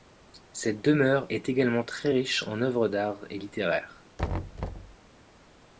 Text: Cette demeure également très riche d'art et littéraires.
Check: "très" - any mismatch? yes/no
no